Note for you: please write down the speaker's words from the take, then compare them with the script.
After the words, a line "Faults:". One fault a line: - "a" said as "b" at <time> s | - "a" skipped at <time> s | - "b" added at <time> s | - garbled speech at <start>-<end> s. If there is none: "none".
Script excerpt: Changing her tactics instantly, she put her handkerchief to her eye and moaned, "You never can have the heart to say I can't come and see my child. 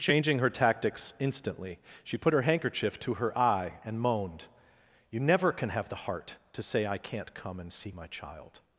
Changing her tactics instantly, she put her handkerchief to her eye and moaned, "You never can have the heart to say I can't come and see my child.
Faults:
none